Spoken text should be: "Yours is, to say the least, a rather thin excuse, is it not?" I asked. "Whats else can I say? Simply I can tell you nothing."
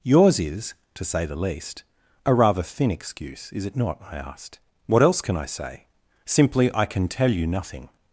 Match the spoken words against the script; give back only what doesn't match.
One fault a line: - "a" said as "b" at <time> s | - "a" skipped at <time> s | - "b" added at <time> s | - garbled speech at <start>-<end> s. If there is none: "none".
- "Whats" said as "What" at 4.9 s